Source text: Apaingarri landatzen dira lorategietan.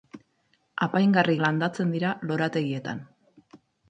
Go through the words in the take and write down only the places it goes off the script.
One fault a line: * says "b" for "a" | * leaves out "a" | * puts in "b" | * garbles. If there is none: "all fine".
all fine